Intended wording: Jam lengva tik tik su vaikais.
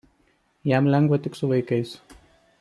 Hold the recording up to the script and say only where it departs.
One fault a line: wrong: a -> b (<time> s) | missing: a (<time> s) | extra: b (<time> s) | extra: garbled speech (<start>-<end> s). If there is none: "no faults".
missing: tik (1.4 s)